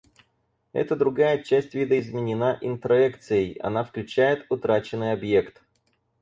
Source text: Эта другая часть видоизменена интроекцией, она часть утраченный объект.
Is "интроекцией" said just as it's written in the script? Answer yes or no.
yes